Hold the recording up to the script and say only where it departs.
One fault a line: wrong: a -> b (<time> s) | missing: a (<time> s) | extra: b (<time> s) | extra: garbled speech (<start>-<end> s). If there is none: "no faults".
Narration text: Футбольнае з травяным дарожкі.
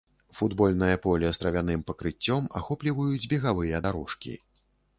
extra: поле (1.0 s)
extra: пакрыццём ахопліваюць бегавыя (1.9 s)